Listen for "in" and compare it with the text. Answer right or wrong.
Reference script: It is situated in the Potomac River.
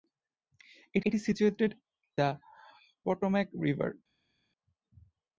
wrong